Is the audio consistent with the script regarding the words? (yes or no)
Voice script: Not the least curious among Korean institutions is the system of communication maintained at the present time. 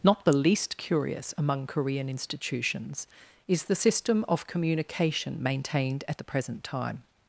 yes